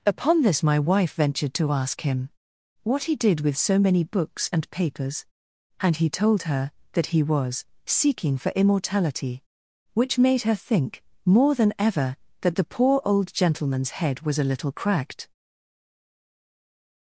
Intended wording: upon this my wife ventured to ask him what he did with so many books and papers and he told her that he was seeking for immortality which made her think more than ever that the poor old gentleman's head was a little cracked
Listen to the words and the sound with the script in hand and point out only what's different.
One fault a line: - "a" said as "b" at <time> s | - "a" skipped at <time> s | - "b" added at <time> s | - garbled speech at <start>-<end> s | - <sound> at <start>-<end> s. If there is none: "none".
none